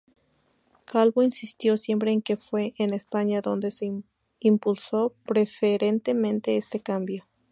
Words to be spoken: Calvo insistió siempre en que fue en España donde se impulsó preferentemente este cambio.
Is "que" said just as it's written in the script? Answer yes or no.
yes